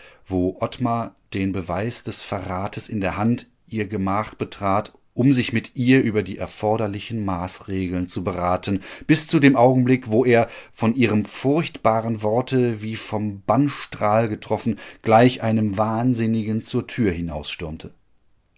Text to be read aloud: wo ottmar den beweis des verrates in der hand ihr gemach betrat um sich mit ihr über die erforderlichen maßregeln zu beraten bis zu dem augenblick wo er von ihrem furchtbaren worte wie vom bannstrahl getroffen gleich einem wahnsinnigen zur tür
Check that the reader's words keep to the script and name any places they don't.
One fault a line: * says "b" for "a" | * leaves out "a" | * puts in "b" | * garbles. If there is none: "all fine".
all fine